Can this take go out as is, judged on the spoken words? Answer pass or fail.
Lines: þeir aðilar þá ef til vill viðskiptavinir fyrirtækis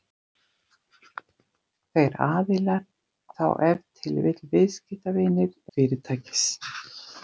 pass